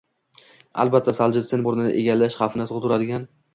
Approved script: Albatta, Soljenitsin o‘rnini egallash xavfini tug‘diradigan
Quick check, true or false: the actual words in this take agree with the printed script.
true